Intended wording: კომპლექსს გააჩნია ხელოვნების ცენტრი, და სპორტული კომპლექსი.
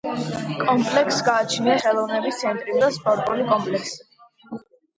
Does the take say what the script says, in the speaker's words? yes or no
yes